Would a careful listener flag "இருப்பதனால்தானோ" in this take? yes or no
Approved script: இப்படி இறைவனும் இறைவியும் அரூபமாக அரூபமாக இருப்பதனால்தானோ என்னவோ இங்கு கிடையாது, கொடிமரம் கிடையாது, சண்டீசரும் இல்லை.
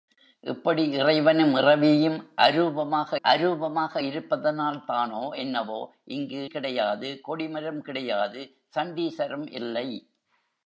no